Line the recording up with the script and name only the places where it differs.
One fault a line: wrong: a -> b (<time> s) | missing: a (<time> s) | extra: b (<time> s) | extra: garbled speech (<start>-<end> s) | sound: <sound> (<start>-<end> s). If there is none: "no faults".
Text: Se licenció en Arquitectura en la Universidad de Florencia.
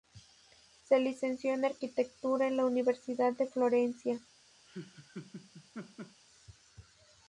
sound: laugh (4.7-6.2 s)